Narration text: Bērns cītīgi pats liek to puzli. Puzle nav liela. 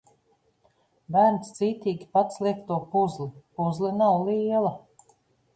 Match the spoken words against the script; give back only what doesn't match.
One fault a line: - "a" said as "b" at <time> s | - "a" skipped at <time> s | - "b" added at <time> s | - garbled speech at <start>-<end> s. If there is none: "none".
none